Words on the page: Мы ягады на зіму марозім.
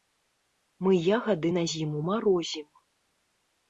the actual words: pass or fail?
pass